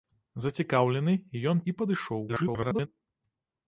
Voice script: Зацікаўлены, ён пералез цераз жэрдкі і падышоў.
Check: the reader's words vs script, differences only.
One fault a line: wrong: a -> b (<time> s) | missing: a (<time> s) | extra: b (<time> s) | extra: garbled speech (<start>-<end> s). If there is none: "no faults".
missing: пералез цераз жэрдкі (1.6 s)
extra: garbled speech (2.3-2.9 s)